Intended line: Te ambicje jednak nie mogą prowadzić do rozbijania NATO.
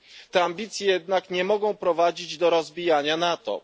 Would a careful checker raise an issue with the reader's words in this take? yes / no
no